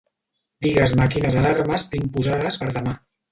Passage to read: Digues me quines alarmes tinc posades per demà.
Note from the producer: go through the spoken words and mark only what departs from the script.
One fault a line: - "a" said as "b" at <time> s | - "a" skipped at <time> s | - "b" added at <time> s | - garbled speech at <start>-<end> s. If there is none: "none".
none